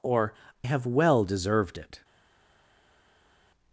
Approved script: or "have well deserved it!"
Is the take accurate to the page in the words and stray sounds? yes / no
yes